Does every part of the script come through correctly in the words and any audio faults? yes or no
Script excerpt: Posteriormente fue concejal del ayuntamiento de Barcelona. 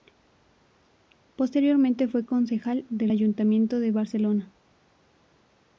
yes